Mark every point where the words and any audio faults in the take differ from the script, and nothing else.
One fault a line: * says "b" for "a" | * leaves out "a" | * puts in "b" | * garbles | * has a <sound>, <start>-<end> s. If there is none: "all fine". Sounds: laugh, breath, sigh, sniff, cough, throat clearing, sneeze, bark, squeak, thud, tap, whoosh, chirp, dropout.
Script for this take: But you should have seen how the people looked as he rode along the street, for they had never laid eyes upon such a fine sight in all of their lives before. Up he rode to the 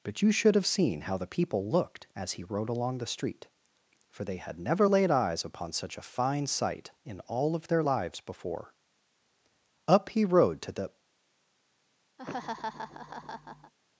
* has a laugh, 12.2-13.7 s